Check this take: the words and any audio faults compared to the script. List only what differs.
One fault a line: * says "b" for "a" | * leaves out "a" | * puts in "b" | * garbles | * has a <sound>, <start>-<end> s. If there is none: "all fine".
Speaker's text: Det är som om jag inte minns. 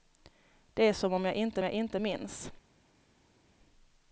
* puts in "jag inte"